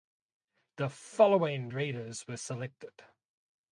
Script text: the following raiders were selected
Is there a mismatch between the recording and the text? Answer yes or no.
no